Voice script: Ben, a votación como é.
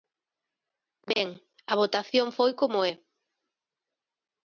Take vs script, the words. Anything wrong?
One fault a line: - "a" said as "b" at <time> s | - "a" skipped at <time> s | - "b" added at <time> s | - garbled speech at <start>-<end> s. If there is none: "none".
- "foi" added at 2.4 s